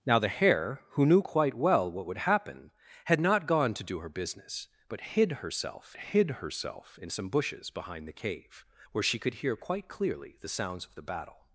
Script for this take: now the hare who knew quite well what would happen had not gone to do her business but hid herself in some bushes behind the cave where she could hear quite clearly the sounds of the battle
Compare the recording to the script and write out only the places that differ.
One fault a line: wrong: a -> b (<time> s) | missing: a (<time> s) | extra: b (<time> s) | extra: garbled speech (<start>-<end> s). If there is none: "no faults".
extra: hid herself (6.0 s)